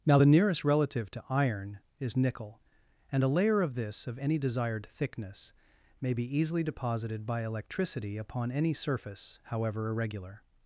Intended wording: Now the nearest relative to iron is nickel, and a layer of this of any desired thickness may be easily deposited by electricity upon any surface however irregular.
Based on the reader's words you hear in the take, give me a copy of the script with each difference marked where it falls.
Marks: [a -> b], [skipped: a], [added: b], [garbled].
Now the nearest relative to iron is nickel, and a layer of this of any desired thickness may be easily deposited by electricity upon any surface however irregular.